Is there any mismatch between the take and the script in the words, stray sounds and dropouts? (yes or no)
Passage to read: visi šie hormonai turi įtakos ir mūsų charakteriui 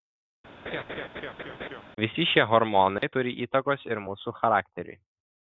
yes